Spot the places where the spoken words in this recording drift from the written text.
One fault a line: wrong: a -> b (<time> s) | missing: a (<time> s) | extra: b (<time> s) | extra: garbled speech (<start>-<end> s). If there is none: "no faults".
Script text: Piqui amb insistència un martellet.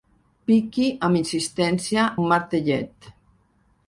no faults